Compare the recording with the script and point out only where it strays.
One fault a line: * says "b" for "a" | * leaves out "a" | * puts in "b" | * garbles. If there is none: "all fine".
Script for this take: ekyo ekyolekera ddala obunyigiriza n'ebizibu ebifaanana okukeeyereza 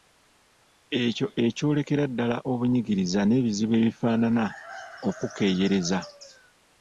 all fine